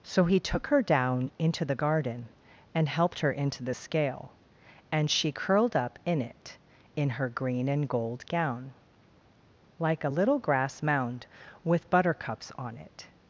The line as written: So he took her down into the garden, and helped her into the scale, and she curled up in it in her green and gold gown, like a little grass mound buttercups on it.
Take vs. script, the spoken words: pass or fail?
fail